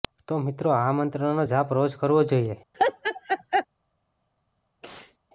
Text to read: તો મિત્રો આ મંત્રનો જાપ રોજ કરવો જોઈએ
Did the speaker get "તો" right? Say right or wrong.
right